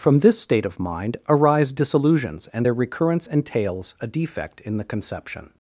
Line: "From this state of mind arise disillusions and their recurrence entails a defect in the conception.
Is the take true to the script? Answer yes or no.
yes